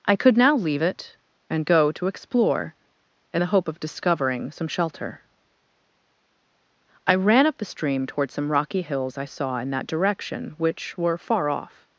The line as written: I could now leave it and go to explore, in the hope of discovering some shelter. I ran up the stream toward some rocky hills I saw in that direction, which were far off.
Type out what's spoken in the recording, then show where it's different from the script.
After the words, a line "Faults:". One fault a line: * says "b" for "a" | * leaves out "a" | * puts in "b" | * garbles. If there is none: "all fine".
I could now leave it and go to explore, in the hope of discovering some shelter. I ran up the stream toward some rocky hills I saw in that direction, which were far off.
Faults:
all fine